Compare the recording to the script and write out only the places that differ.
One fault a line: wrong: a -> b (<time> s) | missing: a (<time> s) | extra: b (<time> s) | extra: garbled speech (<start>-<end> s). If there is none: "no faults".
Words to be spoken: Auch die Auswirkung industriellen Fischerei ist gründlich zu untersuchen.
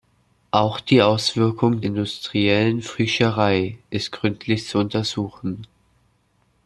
no faults